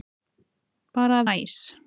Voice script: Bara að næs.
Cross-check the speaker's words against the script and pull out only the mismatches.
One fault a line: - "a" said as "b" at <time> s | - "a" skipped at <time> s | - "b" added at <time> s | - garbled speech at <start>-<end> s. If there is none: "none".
none